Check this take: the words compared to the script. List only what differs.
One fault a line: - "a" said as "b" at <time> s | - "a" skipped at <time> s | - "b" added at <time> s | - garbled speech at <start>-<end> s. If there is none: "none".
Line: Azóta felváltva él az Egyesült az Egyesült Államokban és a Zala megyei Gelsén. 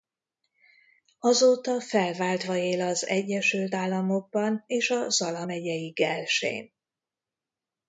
- "az Egyesült" skipped at 3.8 s